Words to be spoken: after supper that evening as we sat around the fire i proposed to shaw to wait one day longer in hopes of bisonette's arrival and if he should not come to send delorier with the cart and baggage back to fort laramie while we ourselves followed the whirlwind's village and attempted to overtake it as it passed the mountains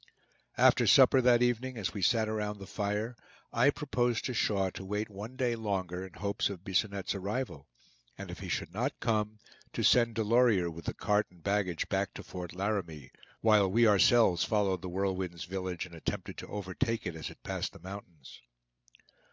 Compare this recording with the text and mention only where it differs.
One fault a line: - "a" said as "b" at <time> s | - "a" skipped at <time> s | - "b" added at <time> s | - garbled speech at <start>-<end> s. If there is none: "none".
none